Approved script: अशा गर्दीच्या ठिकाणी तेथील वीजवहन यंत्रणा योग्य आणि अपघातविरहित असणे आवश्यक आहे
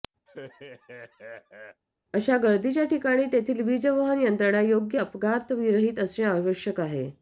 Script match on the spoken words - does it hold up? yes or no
no